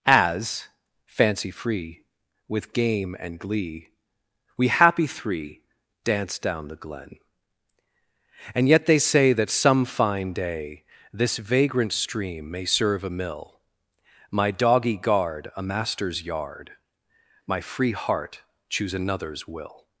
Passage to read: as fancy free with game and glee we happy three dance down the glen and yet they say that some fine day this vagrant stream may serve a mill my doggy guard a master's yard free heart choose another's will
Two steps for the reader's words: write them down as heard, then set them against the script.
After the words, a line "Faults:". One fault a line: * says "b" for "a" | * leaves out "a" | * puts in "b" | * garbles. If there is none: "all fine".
as fancy free with game and glee we happy three dance down the glen and yet they say that some fine day this vagrant stream may serve a mill my doggy guard a master's yard my free heart choose another's will
Faults:
* puts in "my"